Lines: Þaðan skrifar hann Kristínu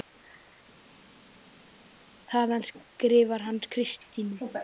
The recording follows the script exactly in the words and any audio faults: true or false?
true